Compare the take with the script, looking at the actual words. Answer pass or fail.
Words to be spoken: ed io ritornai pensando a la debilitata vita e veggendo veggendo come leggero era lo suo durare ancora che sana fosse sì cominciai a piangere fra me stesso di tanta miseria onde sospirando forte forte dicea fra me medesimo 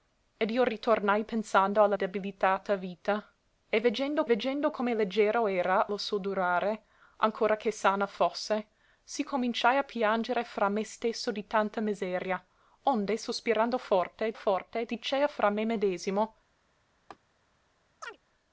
pass